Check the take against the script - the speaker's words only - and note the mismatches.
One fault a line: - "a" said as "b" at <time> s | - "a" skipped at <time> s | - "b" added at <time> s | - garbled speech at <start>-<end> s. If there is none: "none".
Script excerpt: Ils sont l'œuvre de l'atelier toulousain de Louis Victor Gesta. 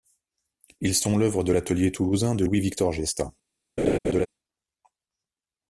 none